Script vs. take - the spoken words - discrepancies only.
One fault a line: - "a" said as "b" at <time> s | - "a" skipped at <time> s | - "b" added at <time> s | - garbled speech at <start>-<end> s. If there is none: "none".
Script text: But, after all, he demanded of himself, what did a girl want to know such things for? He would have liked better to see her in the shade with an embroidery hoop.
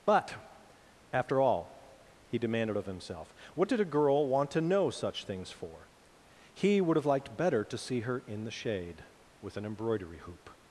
none